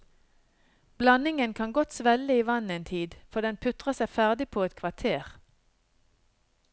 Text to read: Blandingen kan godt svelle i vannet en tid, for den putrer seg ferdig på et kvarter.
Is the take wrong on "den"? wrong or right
right